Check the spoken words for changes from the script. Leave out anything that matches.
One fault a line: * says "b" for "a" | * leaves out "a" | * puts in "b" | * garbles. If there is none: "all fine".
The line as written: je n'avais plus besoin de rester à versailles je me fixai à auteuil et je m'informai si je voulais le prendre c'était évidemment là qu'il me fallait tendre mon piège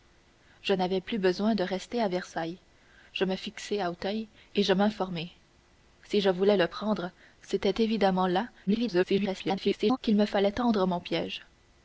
* garbles